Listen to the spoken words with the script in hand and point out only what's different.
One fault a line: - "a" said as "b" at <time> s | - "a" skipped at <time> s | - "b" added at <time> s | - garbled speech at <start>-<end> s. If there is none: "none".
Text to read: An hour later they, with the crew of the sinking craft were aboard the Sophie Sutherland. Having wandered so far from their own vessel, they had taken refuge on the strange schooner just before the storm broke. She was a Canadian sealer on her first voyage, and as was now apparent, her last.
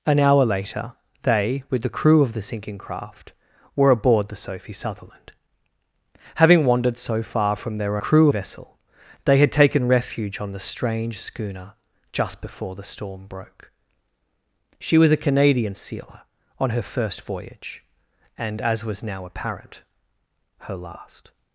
- "own" said as "crew" at 8.0 s